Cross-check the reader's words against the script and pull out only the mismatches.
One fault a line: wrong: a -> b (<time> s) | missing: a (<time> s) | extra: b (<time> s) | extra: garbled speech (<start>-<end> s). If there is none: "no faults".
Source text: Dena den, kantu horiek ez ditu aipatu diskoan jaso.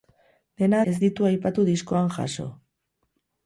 missing: den kantu horiek (0.8 s)